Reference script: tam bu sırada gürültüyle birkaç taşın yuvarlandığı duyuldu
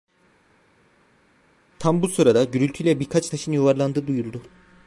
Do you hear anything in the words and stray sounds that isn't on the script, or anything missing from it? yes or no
no